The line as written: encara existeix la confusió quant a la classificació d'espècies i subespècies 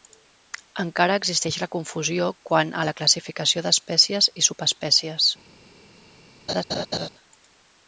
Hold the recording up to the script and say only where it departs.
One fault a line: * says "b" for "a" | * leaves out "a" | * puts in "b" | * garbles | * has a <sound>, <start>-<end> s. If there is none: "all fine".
* has a laugh, 6.5-7.1 s